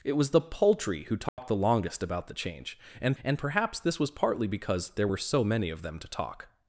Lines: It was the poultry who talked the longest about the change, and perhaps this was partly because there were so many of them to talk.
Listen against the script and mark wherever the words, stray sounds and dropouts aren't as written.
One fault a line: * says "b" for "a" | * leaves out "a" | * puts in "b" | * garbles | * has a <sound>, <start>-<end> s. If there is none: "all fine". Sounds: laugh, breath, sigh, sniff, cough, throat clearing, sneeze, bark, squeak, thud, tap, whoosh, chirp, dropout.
* has a dropout, 1.3-1.4 s
* puts in "and"